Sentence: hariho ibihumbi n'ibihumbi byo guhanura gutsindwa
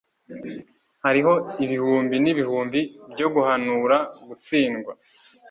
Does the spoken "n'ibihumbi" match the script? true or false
true